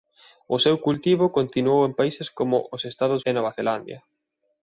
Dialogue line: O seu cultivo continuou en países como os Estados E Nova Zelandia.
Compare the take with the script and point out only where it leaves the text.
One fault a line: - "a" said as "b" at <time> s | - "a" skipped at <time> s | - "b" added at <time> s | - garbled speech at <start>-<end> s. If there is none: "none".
none